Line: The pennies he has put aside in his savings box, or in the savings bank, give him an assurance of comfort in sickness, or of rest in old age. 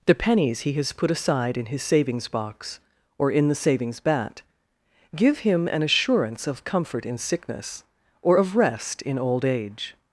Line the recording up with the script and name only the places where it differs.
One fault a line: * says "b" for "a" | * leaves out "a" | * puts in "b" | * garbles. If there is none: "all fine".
* says "bat" for "bank"